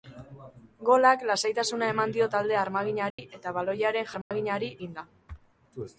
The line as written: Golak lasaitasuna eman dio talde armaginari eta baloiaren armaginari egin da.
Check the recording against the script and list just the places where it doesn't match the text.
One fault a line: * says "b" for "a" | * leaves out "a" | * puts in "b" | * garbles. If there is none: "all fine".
all fine